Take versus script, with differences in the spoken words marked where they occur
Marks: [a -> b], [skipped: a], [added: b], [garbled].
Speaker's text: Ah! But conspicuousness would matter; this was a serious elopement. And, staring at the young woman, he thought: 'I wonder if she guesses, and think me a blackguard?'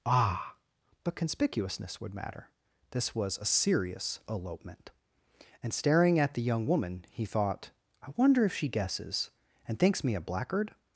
Ah! But conspicuousness would matter; this was a serious elopement. And, staring at the young woman, he thought: 'I wonder if she guesses, and [think -> thinks] me a blackguard?'